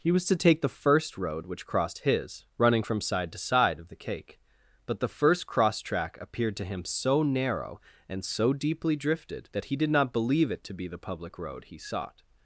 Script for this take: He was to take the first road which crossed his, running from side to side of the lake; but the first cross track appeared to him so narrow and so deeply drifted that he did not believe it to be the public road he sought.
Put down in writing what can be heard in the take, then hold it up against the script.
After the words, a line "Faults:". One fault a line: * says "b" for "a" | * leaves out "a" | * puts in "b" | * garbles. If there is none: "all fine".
He was to take the first road which crossed his, running from side to side of the cake; but the first cross track appeared to him so narrow and so deeply drifted that he did not believe it to be the public road he sought.
Faults:
* says "cake" for "lake"